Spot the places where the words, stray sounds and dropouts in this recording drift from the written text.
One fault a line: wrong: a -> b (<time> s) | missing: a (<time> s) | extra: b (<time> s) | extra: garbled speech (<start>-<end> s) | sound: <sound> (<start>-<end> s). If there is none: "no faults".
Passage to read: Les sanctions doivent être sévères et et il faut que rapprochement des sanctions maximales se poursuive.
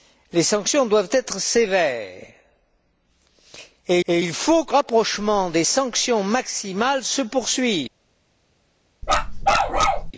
sound: bark (9.0-10.1 s)